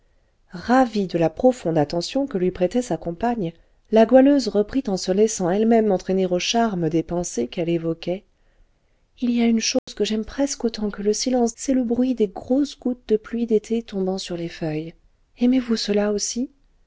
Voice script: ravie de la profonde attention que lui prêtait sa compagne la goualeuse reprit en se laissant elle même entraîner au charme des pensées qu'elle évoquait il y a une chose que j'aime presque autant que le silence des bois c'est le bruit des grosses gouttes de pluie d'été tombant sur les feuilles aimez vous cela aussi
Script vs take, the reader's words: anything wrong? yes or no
yes